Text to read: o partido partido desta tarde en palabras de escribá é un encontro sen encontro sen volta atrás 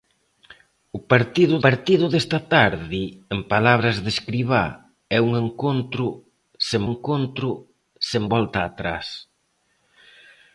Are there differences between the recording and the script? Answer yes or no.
no